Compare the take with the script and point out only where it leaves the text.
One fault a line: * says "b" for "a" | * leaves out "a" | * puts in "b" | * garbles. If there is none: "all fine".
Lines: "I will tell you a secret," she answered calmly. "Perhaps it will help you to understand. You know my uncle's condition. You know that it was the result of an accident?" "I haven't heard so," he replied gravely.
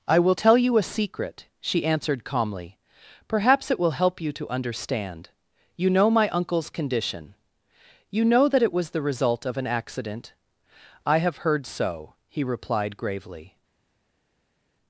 * says "have" for "haven't"